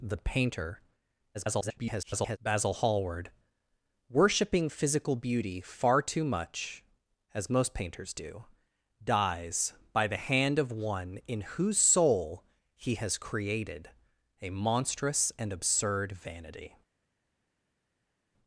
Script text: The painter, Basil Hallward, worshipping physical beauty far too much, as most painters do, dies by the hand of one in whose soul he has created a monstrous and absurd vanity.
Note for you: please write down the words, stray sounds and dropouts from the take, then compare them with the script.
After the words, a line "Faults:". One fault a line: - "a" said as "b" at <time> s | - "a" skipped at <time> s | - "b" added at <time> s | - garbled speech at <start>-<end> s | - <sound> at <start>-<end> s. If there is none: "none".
The painter, [garbled] Basil Hallward, worshipping physical beauty far too much, as most painters do, dies by the hand of one in whose soul he has created a monstrous and absurd vanity.
Faults:
- garbled speech at 1.3-2.4 s